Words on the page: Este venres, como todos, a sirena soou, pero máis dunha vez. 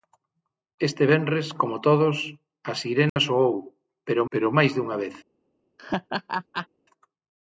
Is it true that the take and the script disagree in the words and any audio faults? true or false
true